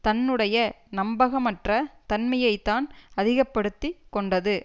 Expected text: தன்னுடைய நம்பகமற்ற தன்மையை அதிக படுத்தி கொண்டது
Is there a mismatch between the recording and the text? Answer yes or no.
yes